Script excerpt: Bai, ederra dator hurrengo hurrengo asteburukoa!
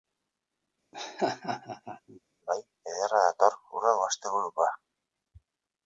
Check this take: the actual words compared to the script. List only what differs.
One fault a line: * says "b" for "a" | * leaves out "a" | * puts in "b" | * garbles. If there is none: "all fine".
* leaves out "hurrengo"